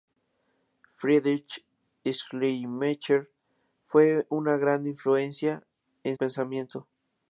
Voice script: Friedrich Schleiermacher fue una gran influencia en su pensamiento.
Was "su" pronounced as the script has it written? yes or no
no